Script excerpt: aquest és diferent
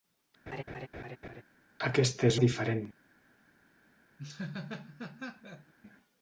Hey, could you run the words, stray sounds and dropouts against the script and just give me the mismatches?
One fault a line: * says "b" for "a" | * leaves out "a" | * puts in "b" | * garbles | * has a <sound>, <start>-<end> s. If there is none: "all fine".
* has a laugh, 0.5-1.4 s
* has a laugh, 4.2-5.7 s